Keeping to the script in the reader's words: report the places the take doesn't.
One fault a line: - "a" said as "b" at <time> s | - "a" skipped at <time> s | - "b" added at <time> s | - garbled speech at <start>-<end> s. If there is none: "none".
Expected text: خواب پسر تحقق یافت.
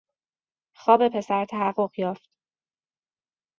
none